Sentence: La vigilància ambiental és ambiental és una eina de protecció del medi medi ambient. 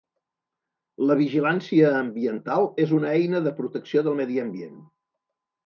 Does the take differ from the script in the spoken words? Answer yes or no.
yes